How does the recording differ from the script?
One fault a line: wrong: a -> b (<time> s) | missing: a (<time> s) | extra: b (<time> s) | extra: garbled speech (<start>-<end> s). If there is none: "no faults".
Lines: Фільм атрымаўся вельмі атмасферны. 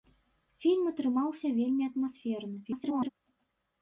extra: garbled speech (2.6-3.1 s)